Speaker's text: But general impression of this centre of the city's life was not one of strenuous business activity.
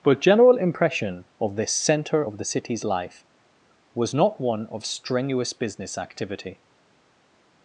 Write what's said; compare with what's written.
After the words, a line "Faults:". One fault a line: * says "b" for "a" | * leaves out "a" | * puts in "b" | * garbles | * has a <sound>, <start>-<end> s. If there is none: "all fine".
But general impression of this centre of the city's life was not one of strenuous business activity.
Faults:
all fine